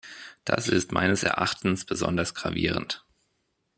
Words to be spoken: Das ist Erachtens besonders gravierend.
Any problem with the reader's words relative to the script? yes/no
yes